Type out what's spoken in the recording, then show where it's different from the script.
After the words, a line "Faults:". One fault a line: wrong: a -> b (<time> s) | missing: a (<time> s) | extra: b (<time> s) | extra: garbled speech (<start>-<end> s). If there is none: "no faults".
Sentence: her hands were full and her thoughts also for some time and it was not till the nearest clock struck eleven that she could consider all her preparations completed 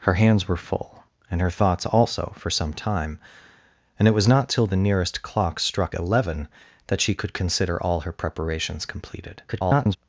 her hands were full and her thoughts also for some time and it was not till the nearest clock struck eleven that she could consider all her preparations completed [garbled]
Faults:
extra: garbled speech (9.5-10.0 s)